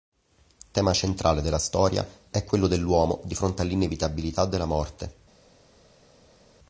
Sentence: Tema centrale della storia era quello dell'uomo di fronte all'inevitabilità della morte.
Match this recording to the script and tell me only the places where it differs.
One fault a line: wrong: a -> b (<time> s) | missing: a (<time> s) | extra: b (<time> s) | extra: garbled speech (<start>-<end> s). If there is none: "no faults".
wrong: era -> è (2.3 s)